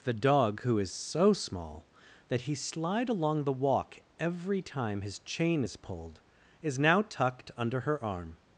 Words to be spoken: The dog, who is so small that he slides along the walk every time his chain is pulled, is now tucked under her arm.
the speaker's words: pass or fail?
fail